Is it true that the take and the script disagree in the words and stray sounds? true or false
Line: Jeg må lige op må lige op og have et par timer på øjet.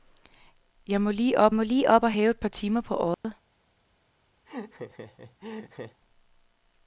true